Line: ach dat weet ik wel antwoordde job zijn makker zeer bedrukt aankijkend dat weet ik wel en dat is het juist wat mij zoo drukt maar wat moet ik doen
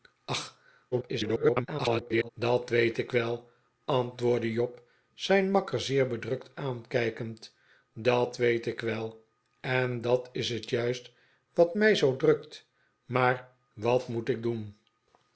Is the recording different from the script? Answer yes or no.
yes